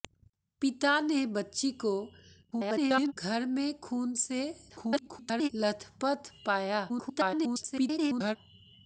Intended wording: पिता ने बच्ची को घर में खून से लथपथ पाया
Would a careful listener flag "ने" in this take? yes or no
no